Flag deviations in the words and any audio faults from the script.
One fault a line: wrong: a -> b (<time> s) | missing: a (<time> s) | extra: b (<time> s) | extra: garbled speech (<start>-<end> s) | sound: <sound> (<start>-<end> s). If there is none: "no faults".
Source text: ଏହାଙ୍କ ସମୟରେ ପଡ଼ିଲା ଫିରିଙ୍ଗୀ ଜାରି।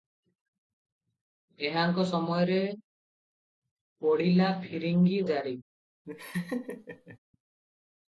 sound: laugh (6.0-7.2 s)